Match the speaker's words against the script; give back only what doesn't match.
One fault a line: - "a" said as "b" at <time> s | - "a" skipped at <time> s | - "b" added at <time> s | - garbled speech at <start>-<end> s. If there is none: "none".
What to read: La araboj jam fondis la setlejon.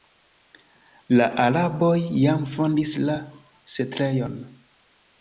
none